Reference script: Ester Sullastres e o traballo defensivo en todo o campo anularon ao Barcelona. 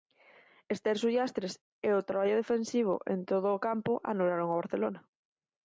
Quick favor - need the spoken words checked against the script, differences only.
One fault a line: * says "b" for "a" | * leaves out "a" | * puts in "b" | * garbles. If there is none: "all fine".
all fine